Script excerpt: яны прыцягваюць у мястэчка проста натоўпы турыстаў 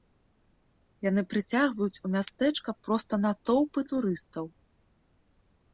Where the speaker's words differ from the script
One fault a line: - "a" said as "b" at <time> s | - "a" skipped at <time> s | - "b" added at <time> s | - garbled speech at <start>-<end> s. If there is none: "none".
none